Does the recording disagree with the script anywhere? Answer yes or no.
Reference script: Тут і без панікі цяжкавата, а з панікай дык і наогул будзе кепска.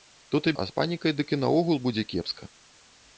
yes